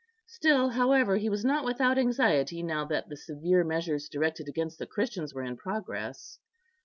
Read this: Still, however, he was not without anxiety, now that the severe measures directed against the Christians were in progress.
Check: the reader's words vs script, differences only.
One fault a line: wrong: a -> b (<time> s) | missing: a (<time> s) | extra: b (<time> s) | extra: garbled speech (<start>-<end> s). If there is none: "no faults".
no faults